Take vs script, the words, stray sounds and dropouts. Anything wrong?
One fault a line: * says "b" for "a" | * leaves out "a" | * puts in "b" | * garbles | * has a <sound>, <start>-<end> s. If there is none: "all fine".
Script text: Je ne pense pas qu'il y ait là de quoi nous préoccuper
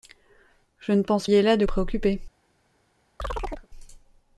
* leaves out "pas qu'il"
* leaves out "quoi nous"
* has a chirp, 3.2-3.7 s